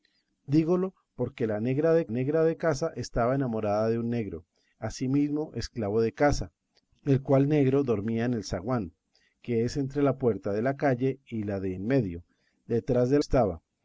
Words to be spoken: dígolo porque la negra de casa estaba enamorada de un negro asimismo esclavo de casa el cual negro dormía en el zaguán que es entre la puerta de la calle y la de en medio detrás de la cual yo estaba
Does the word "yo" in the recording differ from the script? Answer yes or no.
yes